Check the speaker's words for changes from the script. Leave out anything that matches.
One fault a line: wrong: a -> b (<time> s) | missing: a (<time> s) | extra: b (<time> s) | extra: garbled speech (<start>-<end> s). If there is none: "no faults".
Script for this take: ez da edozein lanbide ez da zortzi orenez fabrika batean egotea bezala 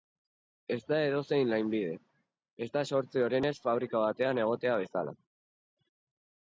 no faults